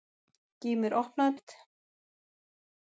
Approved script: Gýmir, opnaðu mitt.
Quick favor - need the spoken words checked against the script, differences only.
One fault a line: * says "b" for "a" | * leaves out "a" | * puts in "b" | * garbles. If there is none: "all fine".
all fine